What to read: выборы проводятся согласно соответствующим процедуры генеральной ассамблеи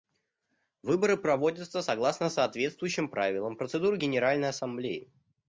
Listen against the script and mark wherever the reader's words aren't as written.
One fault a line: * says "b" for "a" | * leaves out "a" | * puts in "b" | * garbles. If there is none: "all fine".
* puts in "правилам"